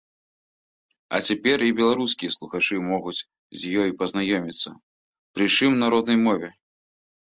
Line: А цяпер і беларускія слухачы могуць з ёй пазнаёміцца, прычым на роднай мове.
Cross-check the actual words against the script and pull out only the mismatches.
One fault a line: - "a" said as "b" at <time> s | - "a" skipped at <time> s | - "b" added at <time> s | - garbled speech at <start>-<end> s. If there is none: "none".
none